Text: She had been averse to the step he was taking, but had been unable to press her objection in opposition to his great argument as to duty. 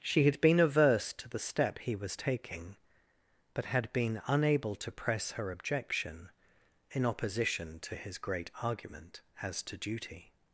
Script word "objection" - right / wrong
right